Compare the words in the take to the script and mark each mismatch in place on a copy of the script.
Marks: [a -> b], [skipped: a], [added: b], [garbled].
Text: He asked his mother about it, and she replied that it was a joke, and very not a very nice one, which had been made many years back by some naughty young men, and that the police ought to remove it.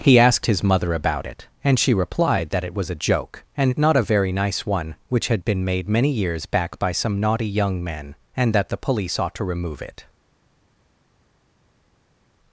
He asked his mother about it, and she replied that it was a joke, and [skipped: very] not a very nice one, which had been made many years back by some naughty young men, and that the police ought to remove it.